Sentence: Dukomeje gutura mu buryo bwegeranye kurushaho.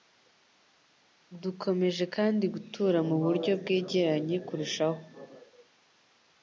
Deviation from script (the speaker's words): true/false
true